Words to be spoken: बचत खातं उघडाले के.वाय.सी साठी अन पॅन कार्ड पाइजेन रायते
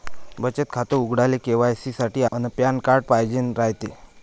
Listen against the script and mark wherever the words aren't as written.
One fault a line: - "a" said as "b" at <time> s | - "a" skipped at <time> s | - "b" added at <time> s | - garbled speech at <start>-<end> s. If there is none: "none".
none